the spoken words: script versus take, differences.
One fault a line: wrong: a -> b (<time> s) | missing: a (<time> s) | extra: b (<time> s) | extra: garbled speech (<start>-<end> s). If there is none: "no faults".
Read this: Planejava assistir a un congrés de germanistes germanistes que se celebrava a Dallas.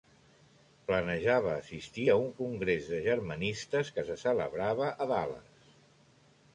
missing: germanistes (3.9 s)